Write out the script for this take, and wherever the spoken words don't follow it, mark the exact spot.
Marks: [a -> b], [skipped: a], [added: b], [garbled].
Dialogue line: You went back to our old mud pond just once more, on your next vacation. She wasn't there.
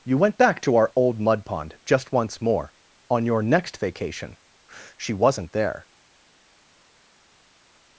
You went back to our old mud pond just once more, on your next vacation. She wasn't there.